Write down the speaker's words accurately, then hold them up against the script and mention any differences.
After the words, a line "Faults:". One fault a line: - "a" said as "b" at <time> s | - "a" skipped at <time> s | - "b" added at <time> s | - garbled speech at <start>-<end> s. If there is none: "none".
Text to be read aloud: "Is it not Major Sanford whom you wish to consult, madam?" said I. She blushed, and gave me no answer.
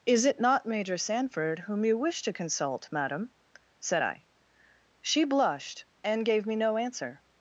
"Is it not Major Sanford whom you wish to consult, madam?" said I. She blushed, and gave me no answer.
Faults:
none